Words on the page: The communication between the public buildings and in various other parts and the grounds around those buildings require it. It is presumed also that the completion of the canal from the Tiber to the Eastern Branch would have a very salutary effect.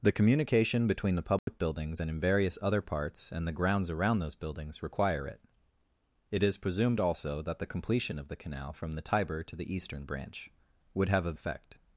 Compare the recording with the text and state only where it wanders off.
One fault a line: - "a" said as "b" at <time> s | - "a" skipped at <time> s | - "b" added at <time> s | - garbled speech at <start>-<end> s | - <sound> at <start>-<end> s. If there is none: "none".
- dropout at 1.4-1.5 s
- "very salutary" skipped at 11.3 s